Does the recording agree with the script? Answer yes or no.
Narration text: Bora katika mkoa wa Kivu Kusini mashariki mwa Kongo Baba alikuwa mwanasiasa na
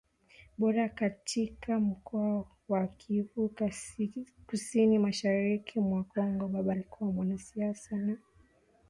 yes